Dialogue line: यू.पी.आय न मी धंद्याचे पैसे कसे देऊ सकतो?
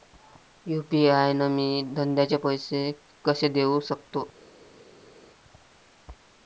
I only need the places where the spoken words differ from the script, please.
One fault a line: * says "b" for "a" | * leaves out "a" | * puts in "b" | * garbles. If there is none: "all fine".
all fine